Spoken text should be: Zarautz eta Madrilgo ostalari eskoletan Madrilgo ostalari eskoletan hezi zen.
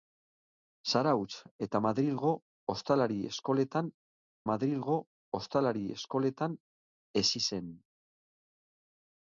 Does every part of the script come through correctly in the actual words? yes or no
yes